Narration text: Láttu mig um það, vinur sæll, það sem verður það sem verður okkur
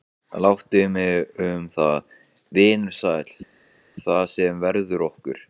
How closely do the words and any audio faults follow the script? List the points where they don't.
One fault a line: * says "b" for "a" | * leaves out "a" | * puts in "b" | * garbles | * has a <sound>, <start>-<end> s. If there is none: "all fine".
* leaves out "það sem verður"